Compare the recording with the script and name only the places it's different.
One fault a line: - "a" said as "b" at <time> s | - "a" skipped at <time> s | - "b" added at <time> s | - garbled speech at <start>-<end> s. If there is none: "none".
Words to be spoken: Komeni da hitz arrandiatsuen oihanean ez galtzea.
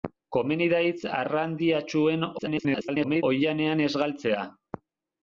- garbled speech at 2.4-3.2 s